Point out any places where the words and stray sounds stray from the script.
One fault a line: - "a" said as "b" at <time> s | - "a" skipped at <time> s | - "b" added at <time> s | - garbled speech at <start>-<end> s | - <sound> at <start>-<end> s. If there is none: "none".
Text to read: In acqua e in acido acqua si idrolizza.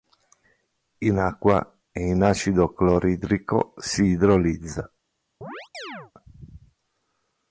- "acqua" said as "cloridrico" at 2.7 s
- chirp at 5.4-6.1 s